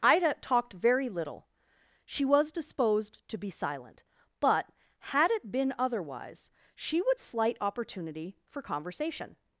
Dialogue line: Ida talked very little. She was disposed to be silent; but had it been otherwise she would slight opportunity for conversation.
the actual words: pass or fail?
pass